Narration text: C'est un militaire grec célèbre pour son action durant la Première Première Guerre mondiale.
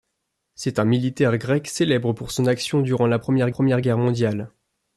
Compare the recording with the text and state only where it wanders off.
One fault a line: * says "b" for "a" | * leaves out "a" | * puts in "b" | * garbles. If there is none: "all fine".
all fine